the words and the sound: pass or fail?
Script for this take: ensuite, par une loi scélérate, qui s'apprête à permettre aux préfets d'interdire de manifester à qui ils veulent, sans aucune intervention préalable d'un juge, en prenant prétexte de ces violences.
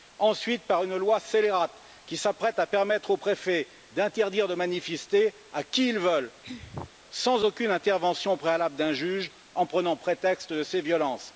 fail